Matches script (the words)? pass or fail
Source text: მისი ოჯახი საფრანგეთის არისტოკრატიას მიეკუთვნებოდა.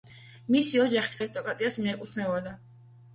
fail